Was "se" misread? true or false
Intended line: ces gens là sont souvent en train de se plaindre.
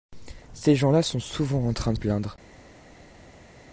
true